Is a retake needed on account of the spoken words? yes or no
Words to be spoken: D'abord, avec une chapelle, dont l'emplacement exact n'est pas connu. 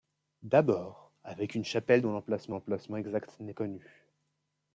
yes